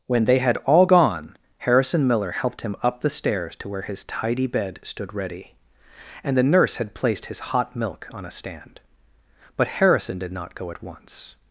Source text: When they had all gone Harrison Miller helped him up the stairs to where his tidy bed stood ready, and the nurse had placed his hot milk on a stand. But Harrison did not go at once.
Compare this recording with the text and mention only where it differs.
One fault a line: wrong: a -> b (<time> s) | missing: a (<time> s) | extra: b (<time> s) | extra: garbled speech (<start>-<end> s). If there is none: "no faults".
no faults